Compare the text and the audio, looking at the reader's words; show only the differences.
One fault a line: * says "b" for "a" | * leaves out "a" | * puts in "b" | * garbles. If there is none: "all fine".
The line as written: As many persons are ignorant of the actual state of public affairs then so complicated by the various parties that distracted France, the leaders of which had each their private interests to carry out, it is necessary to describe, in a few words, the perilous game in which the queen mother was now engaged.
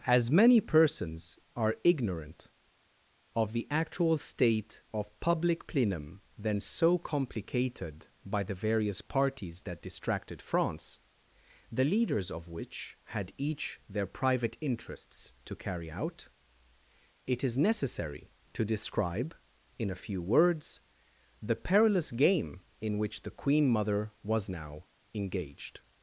* says "plenum" for "affairs"